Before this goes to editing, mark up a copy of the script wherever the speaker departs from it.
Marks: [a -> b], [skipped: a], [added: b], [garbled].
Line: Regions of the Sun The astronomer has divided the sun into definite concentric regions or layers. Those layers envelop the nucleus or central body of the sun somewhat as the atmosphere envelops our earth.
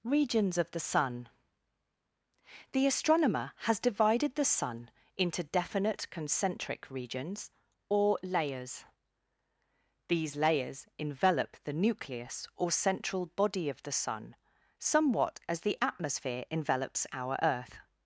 Regions of the Sun The astronomer has divided the sun into definite concentric regions or layers. [Those -> These] layers envelop the nucleus or central body of the sun somewhat as the atmosphere envelops our earth.